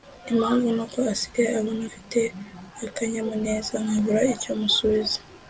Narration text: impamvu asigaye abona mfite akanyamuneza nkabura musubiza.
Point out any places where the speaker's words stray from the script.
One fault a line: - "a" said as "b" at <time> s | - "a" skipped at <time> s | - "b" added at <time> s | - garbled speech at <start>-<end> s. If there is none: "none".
- "nuko" added at 0.8 s
- "icyo" added at 4.3 s